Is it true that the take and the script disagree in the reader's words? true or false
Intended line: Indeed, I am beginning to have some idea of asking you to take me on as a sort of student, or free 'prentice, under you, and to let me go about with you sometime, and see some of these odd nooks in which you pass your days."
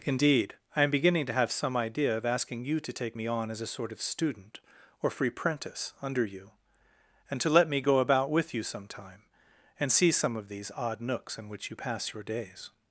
false